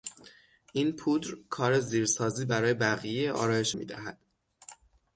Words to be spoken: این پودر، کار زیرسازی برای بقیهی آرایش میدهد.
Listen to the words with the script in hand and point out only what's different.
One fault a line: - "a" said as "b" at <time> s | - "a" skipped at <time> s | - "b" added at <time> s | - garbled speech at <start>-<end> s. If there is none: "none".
none